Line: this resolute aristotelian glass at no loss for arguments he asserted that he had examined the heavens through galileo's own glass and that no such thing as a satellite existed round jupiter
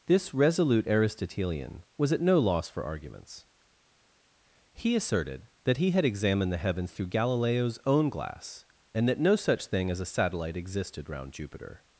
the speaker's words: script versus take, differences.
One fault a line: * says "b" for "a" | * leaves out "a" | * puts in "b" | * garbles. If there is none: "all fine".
* says "was" for "glass"